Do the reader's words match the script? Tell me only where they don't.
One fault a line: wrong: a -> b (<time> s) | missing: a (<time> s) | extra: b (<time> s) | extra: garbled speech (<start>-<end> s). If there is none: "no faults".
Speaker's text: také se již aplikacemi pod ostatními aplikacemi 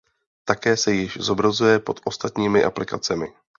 wrong: aplikacemi -> zobrazuje (1.2 s)